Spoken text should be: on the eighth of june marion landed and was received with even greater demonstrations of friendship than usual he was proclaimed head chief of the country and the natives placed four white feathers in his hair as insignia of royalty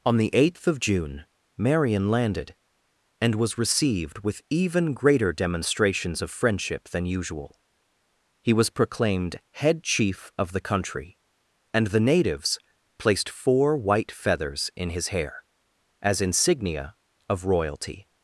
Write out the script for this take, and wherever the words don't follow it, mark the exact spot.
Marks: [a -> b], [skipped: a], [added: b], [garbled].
on the eighth of june marion landed and was received with even greater demonstrations of friendship than usual he was proclaimed head chief of the country and the natives placed four white feathers in his hair as insignia of royalty